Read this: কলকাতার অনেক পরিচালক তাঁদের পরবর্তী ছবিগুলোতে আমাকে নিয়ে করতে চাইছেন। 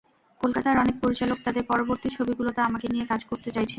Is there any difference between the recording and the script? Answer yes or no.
yes